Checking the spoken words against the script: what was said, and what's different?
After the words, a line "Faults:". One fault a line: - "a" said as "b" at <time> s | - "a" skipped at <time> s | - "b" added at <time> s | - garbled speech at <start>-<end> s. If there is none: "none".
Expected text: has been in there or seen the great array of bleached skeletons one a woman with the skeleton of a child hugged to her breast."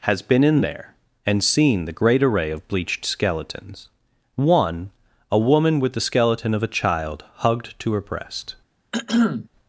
has been in there and seen the great array of bleached skeletons one a woman with the skeleton of a child hugged to her breast."
Faults:
- "or" said as "and" at 1.2 s